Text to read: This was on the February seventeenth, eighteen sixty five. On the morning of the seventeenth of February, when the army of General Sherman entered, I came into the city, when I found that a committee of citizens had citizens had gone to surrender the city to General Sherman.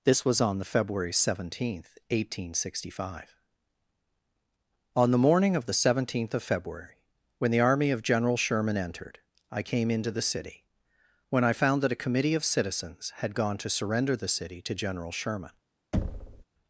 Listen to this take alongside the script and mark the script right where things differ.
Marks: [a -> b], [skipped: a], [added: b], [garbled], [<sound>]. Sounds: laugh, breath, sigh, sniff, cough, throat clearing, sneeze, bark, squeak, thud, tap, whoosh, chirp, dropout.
This was on the February seventeenth, eighteen sixty five. On the morning of the seventeenth of February, when the army of General Sherman entered, I came into the city, when I found that a committee of citizens had [skipped: citizens had] gone to surrender the city to General Sherman. [thud]